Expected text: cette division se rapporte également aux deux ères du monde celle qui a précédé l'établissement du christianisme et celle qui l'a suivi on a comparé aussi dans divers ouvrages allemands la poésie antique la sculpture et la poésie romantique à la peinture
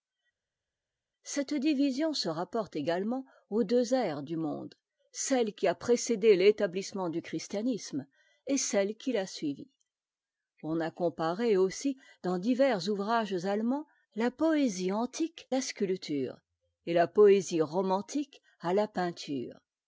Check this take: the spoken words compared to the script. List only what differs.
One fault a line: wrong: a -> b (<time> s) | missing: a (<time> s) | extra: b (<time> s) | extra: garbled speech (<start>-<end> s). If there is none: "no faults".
no faults